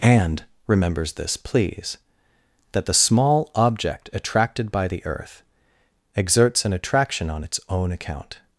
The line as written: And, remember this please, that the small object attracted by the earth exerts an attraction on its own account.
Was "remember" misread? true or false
true